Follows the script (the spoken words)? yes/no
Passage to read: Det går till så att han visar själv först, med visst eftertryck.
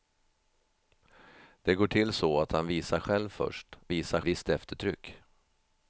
no